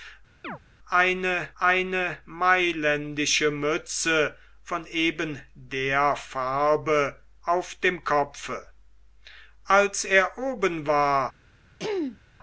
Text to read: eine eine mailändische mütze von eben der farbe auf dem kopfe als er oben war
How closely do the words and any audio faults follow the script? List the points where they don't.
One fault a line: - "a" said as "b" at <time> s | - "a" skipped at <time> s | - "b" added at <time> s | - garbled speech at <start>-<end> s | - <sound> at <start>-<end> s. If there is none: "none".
- chirp at 0.4-0.6 s
- throat clearing at 11.8-12.2 s